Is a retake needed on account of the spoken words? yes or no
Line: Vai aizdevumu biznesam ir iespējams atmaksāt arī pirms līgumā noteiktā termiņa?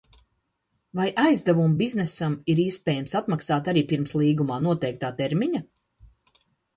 no